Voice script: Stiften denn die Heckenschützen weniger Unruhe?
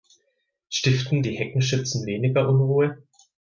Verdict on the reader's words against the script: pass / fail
fail